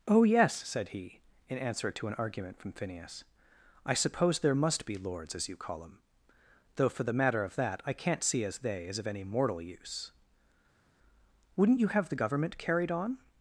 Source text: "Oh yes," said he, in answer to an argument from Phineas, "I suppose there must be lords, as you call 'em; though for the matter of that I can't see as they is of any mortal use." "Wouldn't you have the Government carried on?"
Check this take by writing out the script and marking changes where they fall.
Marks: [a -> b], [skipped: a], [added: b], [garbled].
"Oh yes," said he, in answer to an argument from Phineas, "I suppose there must be lords, as you call 'em; though for the matter of that I can't see as they is of any mortal use." "Wouldn't you have the Government carried on?"